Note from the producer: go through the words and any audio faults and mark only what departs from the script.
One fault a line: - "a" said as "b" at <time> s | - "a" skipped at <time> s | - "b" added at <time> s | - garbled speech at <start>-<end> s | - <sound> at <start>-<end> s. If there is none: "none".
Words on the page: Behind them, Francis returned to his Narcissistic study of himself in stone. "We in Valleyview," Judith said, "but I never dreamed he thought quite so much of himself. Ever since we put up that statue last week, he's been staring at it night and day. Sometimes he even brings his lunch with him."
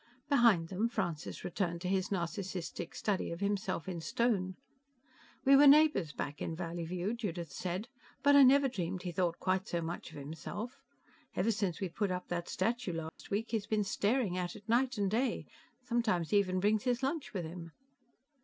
- "were neighbors back" added at 5.5 s
- dropout at 13.1-13.2 s